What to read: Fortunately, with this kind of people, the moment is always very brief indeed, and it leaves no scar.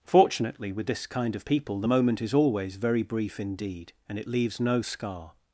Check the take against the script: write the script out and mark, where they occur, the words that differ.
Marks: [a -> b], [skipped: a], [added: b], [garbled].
Fortunately, with this kind of people, the moment is always very brief indeed, and it leaves no scar.